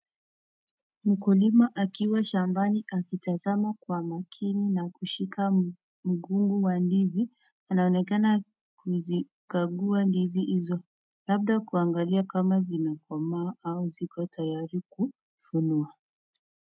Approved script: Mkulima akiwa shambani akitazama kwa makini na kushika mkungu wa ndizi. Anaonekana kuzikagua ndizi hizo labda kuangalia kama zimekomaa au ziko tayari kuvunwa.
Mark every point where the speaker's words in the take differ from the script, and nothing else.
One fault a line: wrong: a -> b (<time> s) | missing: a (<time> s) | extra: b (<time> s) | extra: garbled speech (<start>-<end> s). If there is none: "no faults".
no faults